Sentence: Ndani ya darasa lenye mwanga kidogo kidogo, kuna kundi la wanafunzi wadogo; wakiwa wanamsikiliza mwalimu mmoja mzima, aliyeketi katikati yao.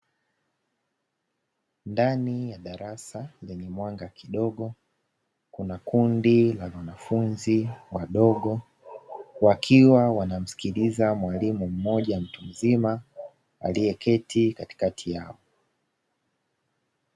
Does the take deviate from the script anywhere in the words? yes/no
yes